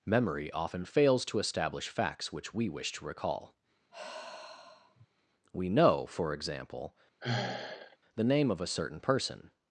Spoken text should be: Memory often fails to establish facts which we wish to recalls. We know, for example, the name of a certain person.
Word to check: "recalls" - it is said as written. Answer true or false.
false